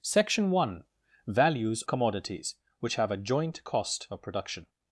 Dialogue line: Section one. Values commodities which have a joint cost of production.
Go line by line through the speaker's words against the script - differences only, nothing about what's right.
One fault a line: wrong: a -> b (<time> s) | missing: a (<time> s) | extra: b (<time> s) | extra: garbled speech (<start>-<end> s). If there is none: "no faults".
no faults